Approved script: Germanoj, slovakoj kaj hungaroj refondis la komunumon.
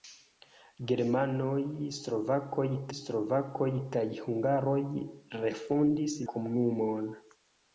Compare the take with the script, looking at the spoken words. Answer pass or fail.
fail